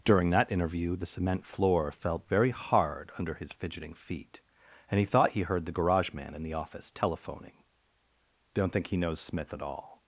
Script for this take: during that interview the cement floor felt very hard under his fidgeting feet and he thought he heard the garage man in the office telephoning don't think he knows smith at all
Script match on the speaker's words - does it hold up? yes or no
yes